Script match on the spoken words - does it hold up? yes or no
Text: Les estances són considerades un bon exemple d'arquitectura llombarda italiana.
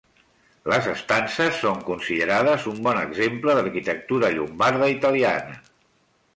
yes